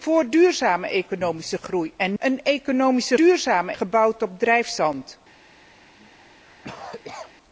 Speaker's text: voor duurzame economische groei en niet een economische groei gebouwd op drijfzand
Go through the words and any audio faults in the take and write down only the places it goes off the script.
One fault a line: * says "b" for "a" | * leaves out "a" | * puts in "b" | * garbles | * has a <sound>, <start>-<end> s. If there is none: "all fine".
* leaves out "niet"
* says "duurzame" for "groei"
* has a cough, 6.0-7.3 s